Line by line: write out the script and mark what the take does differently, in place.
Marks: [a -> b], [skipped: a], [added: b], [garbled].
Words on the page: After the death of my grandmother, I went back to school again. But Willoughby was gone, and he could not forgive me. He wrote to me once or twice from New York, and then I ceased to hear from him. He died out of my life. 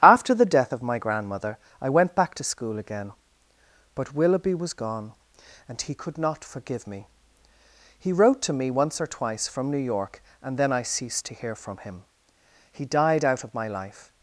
After the death of my grandmother, I went back to school again. But Willoughby was gone, and he could not forgive me. He wrote to me once or twice from New York, and then I ceased to hear from him. He died out of my life.